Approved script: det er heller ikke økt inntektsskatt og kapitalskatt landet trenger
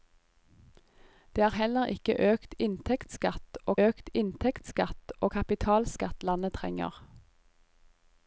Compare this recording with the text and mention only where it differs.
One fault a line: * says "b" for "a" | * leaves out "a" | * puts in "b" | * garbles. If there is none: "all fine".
* puts in "økt inntektsskatt og"